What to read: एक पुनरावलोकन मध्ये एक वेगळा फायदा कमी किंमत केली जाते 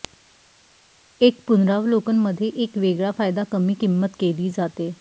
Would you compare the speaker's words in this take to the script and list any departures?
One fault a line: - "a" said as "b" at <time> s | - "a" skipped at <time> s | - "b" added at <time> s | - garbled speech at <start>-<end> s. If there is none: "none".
none